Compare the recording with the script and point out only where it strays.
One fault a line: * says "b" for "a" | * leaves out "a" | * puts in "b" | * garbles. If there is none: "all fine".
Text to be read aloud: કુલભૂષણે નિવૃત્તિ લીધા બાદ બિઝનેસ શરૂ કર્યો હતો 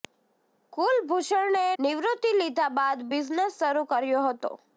all fine